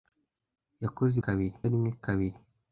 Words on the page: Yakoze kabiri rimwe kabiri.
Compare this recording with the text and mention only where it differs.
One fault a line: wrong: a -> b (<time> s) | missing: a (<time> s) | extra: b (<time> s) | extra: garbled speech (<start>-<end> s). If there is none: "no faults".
no faults